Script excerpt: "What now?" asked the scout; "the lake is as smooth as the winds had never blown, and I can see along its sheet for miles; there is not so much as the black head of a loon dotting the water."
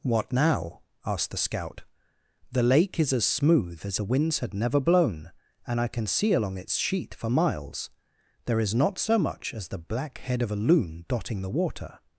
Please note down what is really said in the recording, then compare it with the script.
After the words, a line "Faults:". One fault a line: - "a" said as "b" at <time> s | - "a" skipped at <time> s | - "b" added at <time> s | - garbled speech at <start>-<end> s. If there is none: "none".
"What now?" asked the scout; "the lake is as smooth as the winds had never blown, and I can see along its sheet for miles; there is not so much as the black head of a loon dotting the water."
Faults:
none